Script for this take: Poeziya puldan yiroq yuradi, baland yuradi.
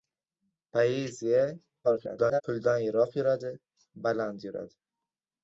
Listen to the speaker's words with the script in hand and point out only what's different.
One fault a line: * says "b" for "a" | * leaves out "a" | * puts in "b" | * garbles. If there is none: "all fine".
* garbles